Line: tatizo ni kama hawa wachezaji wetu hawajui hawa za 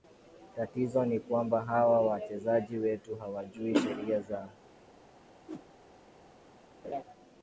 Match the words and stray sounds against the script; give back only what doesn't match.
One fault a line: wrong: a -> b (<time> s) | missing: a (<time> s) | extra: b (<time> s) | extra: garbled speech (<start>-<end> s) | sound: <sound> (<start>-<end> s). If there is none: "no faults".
wrong: kama -> kwamba (1.2 s)
wrong: hawa -> sheria (3.8 s)
sound: whoosh (5.5-5.7 s)
sound: laugh (6.8-7.0 s)